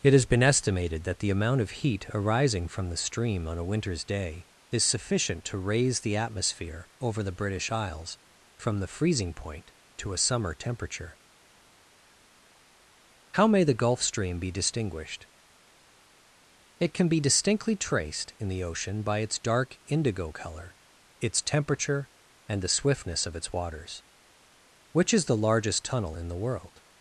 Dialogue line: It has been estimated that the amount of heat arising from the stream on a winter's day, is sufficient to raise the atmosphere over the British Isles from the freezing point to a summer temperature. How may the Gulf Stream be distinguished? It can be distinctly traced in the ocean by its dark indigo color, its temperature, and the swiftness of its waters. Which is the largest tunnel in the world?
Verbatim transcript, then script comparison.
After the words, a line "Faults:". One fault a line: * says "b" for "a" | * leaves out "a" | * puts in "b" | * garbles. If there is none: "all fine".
It has been estimated that the amount of heat arising from the stream on a winter's day, is sufficient to raise the atmosphere over the British Isles from the freezing point to a summer temperature. How may the Gulf Stream be distinguished? It can be distinctly traced in the ocean by its dark indigo color, its temperature, and the swiftness of its waters. Which is the largest tunnel in the world?
Faults:
all fine